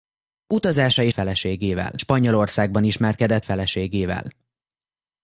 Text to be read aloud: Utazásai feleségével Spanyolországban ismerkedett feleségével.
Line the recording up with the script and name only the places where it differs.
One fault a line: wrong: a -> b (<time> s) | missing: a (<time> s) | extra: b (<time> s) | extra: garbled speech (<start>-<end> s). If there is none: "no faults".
no faults